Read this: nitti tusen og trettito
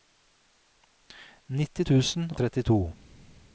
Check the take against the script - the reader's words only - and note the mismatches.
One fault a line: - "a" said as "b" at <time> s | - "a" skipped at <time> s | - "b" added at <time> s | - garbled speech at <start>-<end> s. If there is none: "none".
- "og" skipped at 2.3 s